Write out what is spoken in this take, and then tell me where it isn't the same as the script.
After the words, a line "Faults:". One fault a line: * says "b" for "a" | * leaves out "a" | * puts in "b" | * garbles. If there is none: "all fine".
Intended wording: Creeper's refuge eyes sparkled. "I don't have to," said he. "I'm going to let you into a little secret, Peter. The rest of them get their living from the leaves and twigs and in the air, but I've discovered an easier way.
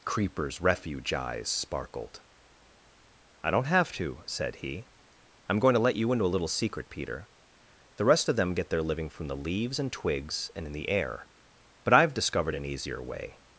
Creeper's refuge eyes sparkled. "I don't have to," said he. "I'm going to let you into a little secret, Peter. The rest of them get their living from the leaves and twigs and in the air, but I've discovered an easier way.
Faults:
all fine